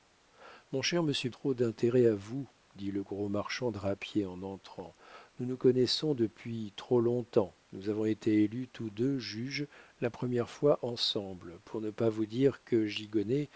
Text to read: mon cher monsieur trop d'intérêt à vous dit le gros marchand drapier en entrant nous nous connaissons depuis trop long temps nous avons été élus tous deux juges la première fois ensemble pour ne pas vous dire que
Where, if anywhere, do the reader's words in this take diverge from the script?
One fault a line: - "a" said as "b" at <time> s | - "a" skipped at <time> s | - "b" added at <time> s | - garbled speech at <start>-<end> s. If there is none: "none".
none